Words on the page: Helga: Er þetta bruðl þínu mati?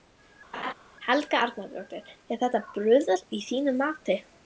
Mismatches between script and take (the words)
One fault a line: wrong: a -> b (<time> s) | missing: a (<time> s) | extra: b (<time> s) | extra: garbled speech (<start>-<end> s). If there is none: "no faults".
extra: Arnardóttir (1.5 s)
extra: að (3.2 s)